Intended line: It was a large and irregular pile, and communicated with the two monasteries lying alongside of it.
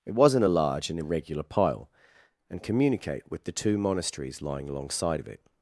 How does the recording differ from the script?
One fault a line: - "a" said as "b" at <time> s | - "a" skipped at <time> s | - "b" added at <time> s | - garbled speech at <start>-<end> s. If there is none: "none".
- "was" said as "wasn't" at 0.1 s
- "communicated" said as "communicate" at 2.6 s